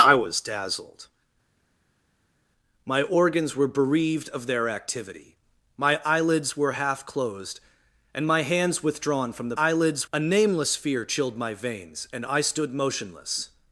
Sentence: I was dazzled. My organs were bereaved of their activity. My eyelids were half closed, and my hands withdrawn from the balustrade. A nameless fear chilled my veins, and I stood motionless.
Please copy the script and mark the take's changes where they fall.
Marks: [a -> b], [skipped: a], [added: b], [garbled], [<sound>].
I was dazzled. My organs were bereaved of their activity. My eyelids were half closed, and my hands withdrawn from the [balustrade. -> eyelids] A nameless fear chilled my veins, and I stood motionless.